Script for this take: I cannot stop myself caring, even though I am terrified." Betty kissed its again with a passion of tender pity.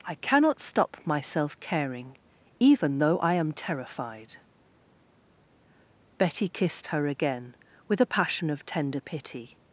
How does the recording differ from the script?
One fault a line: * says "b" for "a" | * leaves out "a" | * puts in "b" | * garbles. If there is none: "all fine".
* says "her" for "its"